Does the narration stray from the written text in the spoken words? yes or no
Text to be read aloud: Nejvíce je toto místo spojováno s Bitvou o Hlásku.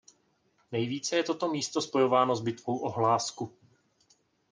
no